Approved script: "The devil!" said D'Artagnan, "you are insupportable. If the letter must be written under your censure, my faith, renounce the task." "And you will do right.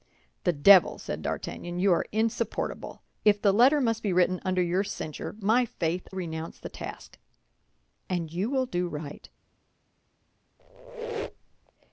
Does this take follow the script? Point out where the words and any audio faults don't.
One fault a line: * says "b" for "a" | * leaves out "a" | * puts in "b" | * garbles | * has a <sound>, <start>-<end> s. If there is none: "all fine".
* has a squeak, 10.6-11.7 s